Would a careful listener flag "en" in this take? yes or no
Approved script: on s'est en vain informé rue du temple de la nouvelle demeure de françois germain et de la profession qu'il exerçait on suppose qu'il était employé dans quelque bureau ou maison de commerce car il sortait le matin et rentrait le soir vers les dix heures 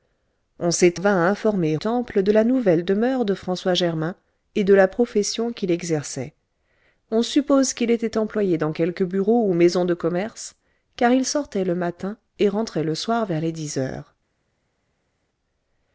yes